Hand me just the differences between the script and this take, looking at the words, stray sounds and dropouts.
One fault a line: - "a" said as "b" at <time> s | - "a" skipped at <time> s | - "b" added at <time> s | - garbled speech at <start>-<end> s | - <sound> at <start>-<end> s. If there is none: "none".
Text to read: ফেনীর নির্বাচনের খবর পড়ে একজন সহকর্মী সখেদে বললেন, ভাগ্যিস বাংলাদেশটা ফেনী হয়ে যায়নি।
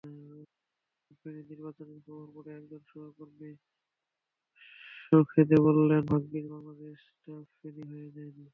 none